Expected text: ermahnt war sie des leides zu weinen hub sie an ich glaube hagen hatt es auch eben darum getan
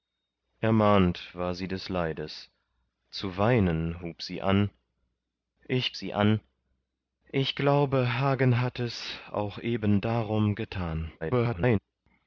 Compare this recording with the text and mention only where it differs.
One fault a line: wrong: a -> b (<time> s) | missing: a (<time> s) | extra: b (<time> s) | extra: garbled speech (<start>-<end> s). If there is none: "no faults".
extra: sie an ich (6.0 s)
extra: garbled speech (11.2-11.8 s)